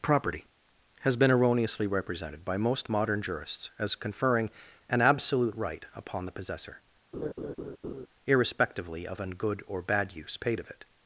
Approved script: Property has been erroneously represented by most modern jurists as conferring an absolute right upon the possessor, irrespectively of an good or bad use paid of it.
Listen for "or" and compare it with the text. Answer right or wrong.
right